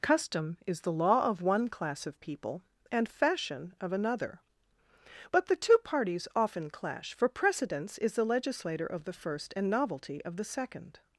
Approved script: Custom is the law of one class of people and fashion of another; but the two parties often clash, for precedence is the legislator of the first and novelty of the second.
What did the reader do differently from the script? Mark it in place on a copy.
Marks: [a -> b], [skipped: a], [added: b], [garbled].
Custom is the law of one class of people and fashion of another; but the two parties often clash, for precedence is the legislator of the first and novelty of the second.